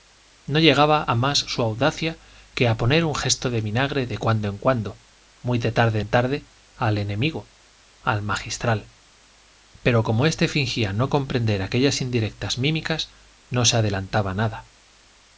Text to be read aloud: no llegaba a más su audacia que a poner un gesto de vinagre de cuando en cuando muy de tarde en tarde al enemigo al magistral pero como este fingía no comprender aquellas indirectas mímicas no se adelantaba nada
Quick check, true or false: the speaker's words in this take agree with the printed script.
true